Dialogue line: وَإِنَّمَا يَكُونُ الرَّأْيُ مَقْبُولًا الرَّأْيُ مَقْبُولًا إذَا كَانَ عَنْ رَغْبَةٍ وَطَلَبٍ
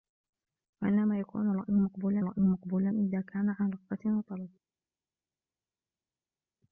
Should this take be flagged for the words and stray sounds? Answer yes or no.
no